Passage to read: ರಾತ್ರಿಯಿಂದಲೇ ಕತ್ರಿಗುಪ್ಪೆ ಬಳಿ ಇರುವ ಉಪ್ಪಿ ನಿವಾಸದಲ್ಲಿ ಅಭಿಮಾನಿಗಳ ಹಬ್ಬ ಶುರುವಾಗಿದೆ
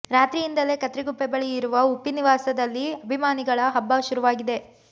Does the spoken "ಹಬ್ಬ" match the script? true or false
true